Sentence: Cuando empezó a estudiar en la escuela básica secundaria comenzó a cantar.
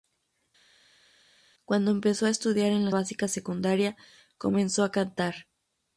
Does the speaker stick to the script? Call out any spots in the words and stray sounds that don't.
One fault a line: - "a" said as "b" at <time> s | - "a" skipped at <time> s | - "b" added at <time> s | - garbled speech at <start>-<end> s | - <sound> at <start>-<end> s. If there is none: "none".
- "escuela" skipped at 2.9 s